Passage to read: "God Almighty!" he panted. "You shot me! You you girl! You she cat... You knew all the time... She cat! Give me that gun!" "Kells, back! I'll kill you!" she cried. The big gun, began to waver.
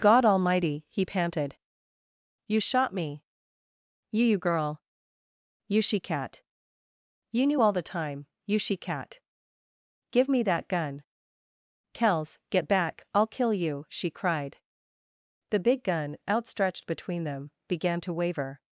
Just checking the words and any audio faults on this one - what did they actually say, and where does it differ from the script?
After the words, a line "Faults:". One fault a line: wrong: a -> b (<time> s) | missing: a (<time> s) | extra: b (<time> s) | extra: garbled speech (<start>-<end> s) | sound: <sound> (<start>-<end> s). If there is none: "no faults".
"God Almighty!" he panted. "You shot me! You you girl! You she cat... You knew all the time... You she cat! Give me that gun!" "Kells, get back! I'll kill you!" she cried. The big gun, outstretched between them, began to waver.
Faults:
extra: You (8.5 s)
extra: get (12.5 s)
extra: outstretched between them (16.3 s)